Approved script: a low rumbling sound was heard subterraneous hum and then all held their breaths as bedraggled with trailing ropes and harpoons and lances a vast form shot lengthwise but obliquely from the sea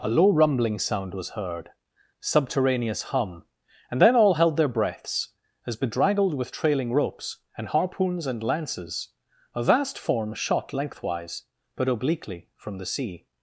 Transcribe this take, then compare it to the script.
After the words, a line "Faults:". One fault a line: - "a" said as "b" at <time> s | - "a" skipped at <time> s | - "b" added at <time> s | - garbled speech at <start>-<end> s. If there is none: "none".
a low rumbling sound was heard subterraneous hum and then all held their breaths as bedraggled with trailing ropes and harpoons and lances a vast form shot lengthwise but obliquely from the sea
Faults:
none